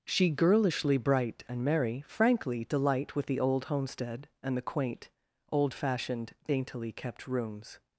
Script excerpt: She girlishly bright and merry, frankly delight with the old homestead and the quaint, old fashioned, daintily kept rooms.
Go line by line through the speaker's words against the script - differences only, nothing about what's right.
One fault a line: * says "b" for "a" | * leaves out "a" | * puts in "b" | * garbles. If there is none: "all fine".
all fine